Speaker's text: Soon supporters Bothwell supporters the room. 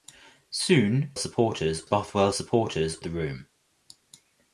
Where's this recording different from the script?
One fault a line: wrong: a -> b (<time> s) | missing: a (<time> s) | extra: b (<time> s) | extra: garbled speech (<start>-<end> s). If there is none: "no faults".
no faults